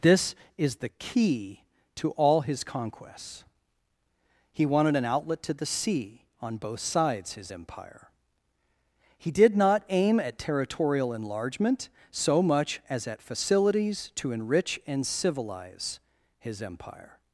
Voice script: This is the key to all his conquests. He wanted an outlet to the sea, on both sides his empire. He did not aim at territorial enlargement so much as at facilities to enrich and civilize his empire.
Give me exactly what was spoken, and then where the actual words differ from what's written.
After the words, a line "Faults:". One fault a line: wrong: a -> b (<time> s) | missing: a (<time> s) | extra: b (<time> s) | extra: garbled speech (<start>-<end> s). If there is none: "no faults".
This is the key to all his conquests. He wanted an outlet to the sea, on both sides his empire. He did not aim at territorial enlargement so much as at facilities to enrich and civilize his empire.
Faults:
no faults